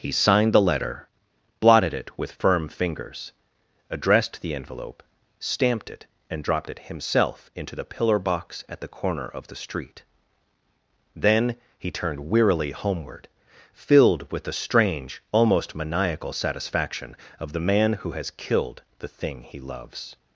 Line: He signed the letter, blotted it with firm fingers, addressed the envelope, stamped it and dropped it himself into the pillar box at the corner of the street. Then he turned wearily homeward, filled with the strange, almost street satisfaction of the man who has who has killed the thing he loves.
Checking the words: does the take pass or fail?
fail